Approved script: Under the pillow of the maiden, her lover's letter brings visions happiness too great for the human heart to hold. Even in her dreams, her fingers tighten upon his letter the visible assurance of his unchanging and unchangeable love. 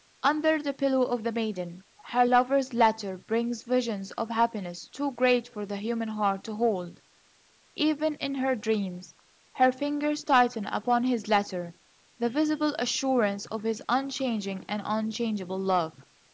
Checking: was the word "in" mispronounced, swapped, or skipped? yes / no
no